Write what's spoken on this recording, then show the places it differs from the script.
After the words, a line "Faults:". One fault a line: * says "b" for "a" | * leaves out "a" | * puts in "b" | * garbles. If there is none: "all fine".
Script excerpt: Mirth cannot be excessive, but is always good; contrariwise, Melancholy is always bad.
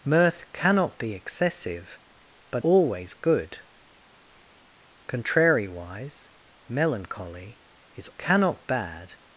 Mirth cannot be excessive, but always good; contrariwise, Melancholy is cannot bad.
Faults:
* leaves out "is"
* says "cannot" for "always"